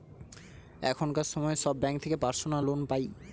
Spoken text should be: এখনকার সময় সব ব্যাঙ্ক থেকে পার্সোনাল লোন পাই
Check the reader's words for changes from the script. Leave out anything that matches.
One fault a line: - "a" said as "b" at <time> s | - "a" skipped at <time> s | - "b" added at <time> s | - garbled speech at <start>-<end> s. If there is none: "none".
none